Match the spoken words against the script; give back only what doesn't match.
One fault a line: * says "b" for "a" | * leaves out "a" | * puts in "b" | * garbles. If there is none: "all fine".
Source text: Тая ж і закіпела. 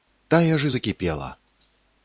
all fine